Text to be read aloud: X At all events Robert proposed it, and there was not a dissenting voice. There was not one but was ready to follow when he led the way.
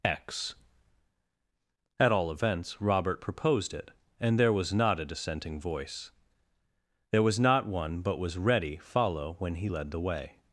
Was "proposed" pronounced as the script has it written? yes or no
yes